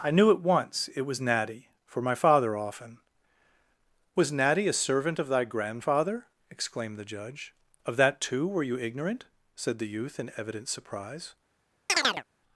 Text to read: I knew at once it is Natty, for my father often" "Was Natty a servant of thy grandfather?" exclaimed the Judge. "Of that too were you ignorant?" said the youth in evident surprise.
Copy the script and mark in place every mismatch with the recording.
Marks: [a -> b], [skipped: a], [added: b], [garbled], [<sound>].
I knew at once it [is -> was] Natty, for my father often" "Was Natty a servant of thy grandfather?" exclaimed the Judge. "Of that too were you ignorant?" said the youth in evident surprise. [chirp]